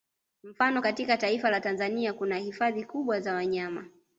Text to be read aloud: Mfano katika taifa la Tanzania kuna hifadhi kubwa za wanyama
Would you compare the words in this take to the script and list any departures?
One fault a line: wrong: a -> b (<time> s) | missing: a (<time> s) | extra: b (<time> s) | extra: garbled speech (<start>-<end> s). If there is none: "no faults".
no faults